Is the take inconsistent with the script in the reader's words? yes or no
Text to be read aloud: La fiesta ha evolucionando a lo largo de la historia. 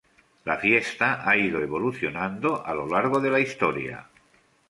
yes